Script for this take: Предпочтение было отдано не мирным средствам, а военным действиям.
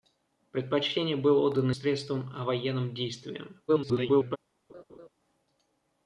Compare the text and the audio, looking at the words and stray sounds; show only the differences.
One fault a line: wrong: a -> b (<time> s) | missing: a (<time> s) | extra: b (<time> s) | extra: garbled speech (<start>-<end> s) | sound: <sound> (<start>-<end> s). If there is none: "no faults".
missing: не мирным (1.7 s)
extra: garbled speech (3.7-4.4 s)
sound: laugh (4.7-5.1 s)